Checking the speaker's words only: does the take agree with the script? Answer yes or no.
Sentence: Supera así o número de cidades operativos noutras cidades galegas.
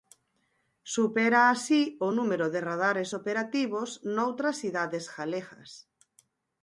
no